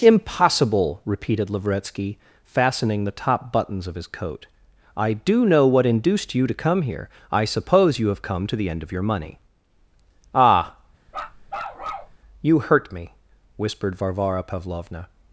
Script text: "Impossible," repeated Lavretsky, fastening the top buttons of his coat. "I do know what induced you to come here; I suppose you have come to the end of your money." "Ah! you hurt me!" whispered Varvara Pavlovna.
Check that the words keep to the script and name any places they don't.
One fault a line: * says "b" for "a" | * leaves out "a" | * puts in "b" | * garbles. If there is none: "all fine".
all fine